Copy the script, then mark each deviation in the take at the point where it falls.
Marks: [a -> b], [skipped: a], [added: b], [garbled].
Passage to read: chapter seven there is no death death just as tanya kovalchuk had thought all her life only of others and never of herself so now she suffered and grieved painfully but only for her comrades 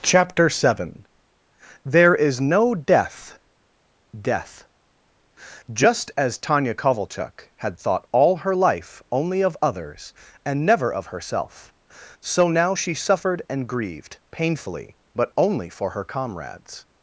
chapter seven there is no death death just as tanya kovalchuk had thought all her life only of others and never of herself so now she suffered and grieved painfully but only for her comrades